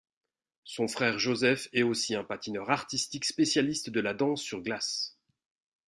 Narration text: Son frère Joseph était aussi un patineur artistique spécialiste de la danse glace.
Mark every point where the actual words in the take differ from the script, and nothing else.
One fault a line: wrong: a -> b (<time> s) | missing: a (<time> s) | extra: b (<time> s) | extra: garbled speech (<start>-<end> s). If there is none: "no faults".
wrong: était -> est (1.7 s)
extra: sur (4.4 s)